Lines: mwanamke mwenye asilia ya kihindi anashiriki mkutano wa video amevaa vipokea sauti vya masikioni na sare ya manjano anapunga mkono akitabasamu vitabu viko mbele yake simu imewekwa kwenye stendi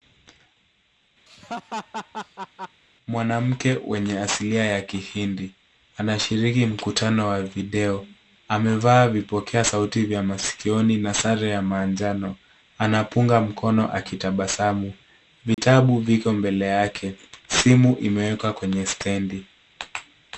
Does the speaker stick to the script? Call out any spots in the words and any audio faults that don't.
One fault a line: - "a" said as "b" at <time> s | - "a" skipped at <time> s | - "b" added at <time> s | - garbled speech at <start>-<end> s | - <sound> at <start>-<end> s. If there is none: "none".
- laugh at 1.3-2.8 s
- dropout at 15.5-15.6 s